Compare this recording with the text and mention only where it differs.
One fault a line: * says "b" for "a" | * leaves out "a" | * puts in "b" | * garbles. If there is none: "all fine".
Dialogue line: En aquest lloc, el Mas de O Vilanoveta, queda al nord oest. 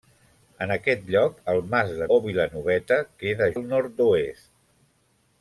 all fine